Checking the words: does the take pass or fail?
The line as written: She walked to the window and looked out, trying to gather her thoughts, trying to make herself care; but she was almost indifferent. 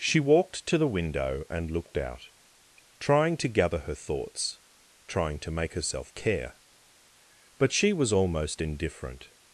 pass